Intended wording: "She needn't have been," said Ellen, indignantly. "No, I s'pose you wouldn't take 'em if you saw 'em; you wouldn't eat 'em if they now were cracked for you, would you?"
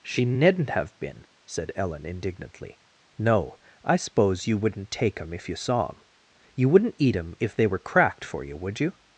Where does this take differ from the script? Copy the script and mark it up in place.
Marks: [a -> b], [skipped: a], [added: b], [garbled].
"She needn't have been," said Ellen, indignantly. "No, I s'pose you wouldn't take 'em if you saw 'em; you wouldn't eat 'em if they [skipped: now] were cracked for you, would you?"